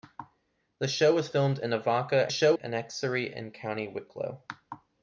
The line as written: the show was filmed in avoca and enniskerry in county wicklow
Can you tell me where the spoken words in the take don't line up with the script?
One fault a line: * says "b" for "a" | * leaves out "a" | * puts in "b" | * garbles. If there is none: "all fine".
* says "show" for "and"